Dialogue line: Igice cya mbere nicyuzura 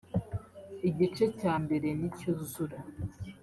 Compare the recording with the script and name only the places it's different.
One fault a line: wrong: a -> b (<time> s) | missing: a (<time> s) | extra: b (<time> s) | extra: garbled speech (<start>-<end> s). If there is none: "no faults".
no faults